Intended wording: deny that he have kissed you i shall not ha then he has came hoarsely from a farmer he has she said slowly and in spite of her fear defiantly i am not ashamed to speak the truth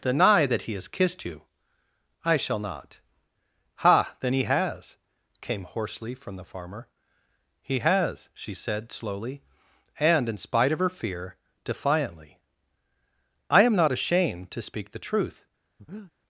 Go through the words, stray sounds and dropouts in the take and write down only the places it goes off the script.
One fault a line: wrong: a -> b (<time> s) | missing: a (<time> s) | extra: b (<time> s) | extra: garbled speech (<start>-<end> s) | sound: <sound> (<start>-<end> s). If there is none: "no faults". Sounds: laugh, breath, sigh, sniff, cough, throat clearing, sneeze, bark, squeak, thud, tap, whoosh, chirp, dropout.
wrong: have -> has (0.7 s)
wrong: a -> the (6.4 s)
sound: breath (15.8-16.1 s)